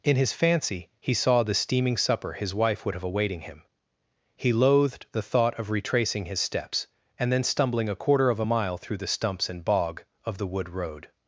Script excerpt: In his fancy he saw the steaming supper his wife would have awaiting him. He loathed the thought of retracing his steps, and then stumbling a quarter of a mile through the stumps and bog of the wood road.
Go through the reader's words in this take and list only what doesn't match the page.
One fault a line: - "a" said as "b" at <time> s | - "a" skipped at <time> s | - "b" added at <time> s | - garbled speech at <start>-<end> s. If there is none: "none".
none